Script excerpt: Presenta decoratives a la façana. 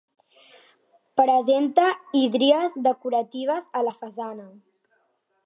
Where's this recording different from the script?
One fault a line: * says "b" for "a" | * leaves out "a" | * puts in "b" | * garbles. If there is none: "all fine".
* puts in "hídries"